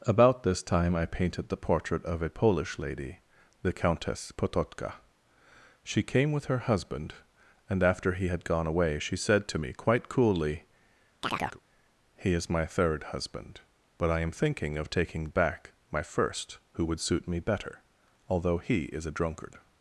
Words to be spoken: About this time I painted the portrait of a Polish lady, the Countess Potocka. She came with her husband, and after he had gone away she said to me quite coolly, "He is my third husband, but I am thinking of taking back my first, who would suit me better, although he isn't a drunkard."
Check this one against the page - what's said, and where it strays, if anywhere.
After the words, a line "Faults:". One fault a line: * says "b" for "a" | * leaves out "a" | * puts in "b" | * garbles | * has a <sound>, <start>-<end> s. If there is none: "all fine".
About this time I painted the portrait of a Polish lady, the Countess Potocka. She came with her husband, and after he had gone away she said to me quite coolly, "He is my third husband, but I am thinking of taking back my first, who would suit me better, although he is a drunkard."
Faults:
* has a chirp, 11.2-11.6 s
* says "is" for "isn't"